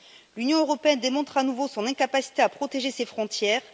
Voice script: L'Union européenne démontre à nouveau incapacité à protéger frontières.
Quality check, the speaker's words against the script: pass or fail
fail